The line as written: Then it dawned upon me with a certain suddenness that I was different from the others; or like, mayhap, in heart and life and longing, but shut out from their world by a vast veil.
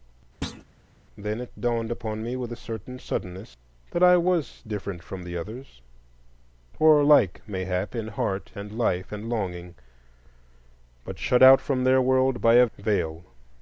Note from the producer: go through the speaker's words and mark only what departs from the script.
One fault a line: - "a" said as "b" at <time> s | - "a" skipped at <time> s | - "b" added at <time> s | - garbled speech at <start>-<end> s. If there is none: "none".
- "vast" skipped at 12.7 s